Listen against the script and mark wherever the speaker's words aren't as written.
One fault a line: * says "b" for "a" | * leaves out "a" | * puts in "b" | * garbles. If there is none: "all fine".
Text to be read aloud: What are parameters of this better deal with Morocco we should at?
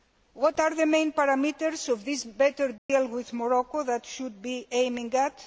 * puts in "the main"
* puts in "that"
* puts in "be aiming"